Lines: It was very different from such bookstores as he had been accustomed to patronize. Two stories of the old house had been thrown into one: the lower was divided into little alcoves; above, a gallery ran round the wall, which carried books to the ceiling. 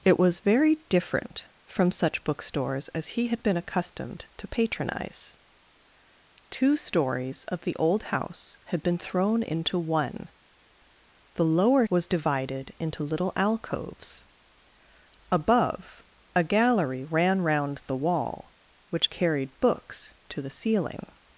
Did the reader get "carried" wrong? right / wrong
right